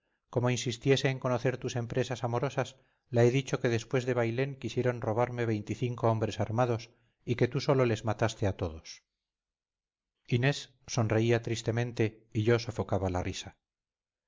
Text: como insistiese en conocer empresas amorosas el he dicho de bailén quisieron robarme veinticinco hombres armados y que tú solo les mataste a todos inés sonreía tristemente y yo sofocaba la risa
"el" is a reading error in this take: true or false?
true